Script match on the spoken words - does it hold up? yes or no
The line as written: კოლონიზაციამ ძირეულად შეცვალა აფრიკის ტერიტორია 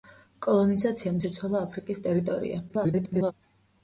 no